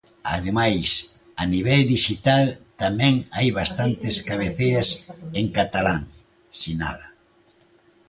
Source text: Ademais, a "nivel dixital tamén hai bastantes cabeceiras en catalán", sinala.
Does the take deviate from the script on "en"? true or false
false